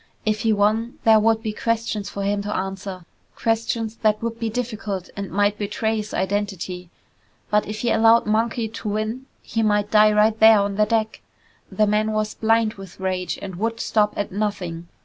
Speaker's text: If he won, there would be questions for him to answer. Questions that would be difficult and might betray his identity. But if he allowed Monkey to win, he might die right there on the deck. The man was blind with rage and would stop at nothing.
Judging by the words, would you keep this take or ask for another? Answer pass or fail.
pass